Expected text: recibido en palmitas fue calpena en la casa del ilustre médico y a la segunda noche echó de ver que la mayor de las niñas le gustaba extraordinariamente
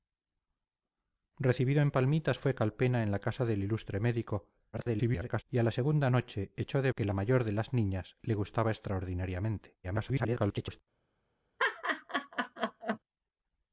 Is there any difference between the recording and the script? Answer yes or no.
yes